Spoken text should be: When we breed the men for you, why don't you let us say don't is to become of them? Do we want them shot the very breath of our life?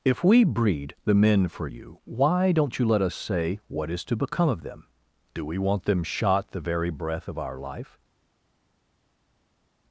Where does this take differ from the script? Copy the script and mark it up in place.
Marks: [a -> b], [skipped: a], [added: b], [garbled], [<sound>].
[When -> If] we breed the men for you, why don't you let us say [don't -> what] is to become of them? Do we want them shot the very breath of our life?